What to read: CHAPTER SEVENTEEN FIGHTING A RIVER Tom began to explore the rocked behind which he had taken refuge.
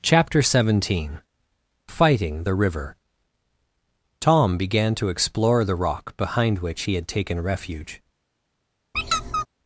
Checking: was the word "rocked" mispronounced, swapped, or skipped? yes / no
yes